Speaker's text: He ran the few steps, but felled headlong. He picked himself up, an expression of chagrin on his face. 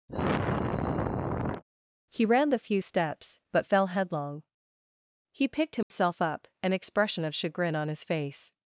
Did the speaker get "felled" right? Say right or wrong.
wrong